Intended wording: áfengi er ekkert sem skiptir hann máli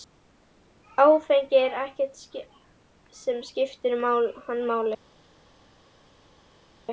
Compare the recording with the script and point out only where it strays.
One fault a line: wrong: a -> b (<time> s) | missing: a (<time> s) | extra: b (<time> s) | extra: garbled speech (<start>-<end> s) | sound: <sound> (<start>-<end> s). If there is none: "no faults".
no faults